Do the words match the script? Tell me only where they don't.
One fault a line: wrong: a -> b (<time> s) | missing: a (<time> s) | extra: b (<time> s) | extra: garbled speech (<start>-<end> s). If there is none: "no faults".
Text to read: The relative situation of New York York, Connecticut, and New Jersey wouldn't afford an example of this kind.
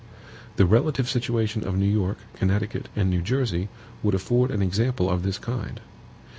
missing: York (2.2 s)
wrong: wouldn't -> would (4.0 s)